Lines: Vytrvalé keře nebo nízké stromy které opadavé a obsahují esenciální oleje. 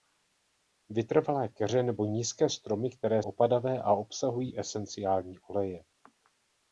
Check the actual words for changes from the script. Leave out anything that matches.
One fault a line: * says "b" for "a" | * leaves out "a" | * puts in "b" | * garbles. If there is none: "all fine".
all fine